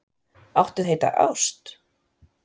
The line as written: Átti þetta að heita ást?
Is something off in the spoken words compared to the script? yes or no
yes